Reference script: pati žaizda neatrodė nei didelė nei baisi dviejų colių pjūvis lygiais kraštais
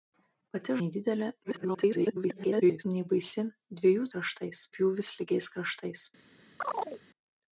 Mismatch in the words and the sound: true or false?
true